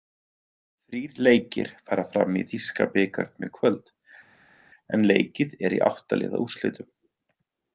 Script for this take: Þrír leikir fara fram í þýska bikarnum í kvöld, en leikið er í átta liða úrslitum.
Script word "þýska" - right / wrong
right